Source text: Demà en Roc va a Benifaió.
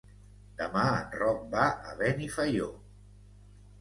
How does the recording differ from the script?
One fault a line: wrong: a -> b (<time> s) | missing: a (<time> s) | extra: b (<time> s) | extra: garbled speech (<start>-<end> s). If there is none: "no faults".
no faults